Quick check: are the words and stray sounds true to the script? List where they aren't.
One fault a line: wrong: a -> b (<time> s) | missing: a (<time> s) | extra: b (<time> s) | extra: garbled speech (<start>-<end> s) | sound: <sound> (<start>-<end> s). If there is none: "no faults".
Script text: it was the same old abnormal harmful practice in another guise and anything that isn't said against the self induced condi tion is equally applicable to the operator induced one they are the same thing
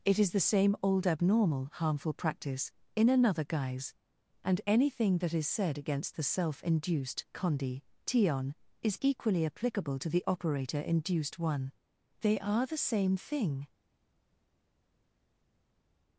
wrong: was -> is (0.2 s)
wrong: isn't -> is (5.3 s)